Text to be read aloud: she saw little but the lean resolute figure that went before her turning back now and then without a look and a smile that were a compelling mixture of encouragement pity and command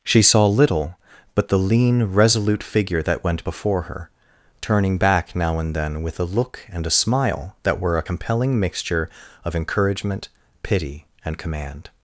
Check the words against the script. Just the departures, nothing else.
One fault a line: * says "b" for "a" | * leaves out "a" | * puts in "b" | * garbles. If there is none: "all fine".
* says "with" for "without"